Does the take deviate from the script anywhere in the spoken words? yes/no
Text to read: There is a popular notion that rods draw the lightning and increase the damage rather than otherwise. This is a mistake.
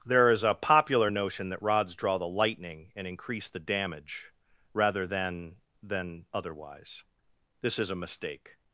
yes